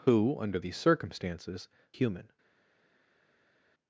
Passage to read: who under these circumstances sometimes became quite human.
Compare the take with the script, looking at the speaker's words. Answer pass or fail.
fail